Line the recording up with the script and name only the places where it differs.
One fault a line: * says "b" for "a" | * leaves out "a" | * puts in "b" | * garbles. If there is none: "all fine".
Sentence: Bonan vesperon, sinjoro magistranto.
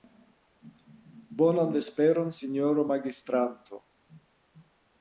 all fine